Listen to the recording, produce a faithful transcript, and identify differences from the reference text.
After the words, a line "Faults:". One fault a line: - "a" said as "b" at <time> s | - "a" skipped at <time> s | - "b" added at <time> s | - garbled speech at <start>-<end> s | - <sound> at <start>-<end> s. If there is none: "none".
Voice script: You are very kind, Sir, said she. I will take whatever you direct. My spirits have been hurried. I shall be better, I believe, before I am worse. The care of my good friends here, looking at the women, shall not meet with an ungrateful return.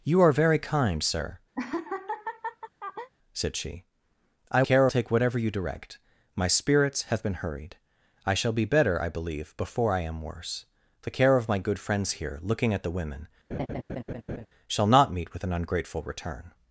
You are very kind, Sir, said she. I care take whatever you direct. My spirits have been hurried. I shall be better, I believe, before I am worse. The care of my good friends here, looking at the women, shall not meet with an ungrateful return.
Faults:
- laugh at 1.6-3.1 s
- "will" said as "care" at 4.6 s
- laugh at 13.5-14.5 s